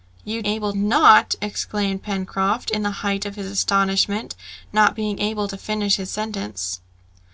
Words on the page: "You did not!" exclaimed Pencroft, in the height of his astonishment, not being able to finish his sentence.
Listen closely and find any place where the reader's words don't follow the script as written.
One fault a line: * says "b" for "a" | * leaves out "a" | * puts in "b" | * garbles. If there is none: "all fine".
* says "able" for "did"